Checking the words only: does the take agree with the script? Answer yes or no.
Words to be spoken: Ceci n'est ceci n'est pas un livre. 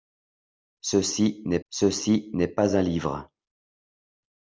yes